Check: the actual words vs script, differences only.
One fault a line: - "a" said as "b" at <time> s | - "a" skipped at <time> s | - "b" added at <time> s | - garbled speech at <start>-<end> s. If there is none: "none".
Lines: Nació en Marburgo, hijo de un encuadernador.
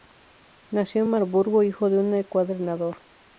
none